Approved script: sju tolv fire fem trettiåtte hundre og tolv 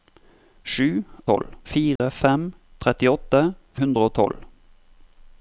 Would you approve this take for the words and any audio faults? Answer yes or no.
no